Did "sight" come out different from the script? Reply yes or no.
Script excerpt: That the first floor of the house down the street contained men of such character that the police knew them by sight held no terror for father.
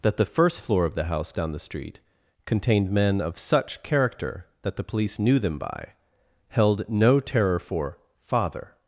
yes